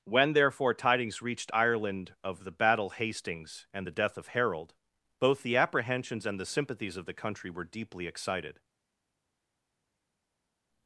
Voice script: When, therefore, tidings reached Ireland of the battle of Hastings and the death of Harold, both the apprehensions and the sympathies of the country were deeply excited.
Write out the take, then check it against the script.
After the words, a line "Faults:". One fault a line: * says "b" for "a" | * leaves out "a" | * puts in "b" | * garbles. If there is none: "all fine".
When, therefore, tidings reached Ireland of the battle Hastings and the death of Harold, both the apprehensions and the sympathies of the country were deeply excited.
Faults:
* leaves out "of"